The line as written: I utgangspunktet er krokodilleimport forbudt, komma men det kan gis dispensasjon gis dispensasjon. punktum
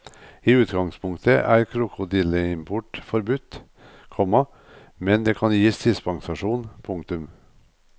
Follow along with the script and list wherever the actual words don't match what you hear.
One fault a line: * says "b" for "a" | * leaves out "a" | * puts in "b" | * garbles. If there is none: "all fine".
* leaves out "gis dispensasjon"